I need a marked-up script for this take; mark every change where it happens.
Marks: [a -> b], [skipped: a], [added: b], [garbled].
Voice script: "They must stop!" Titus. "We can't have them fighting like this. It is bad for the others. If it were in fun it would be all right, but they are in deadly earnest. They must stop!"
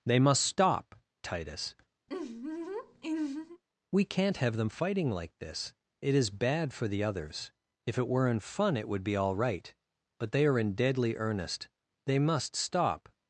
"They must stop!" Titus. "We can't have them fighting like this. It is bad for the others. If it were in fun it would be all right, but they are in deadly earnest. They must stop!"